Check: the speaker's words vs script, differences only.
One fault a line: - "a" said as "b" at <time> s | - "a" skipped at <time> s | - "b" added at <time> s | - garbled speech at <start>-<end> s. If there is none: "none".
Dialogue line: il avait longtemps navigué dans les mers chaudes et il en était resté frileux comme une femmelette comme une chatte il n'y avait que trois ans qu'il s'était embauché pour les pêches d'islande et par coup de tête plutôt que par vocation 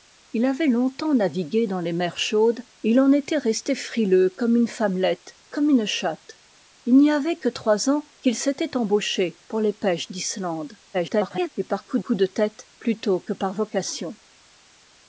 - garbled speech at 10.9-11.5 s
- "coup" added at 12.0 s